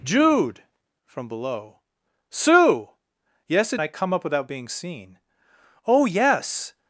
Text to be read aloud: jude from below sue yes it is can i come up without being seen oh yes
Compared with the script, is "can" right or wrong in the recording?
wrong